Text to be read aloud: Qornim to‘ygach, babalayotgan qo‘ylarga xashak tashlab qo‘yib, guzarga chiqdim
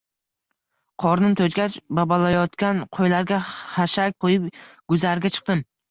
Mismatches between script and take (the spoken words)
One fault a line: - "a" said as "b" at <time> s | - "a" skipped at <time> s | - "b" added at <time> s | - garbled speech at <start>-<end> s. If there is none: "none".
- "tashlab" skipped at 4.2 s